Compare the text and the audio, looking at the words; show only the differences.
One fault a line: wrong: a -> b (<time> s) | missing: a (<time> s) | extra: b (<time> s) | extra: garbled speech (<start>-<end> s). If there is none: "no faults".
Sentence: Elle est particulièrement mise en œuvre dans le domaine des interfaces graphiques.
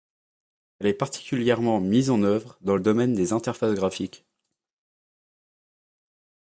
no faults